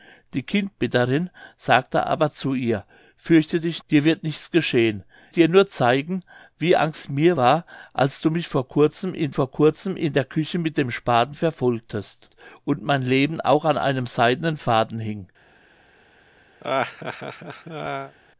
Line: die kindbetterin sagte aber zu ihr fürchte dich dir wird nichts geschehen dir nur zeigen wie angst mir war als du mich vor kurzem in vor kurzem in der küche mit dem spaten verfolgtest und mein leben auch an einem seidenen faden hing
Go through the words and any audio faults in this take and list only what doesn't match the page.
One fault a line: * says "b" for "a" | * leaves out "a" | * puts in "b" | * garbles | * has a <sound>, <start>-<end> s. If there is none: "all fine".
* has a laugh, 16.6-18.1 s